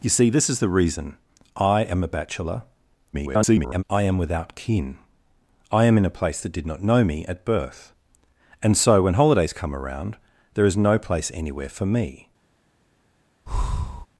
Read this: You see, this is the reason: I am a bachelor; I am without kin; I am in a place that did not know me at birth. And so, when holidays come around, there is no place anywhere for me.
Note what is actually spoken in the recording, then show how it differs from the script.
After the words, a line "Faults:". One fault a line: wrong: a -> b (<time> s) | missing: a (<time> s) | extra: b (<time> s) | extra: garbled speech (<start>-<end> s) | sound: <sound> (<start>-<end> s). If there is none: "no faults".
You see, this is the reason: I am a bachelor; [garbled] I am without kin; I am in a place that did not know me at birth. And so, when holidays come around, there is no place anywhere for me.
Faults:
extra: garbled speech (3.1-3.8 s)
sound: breath (13.5-14.1 s)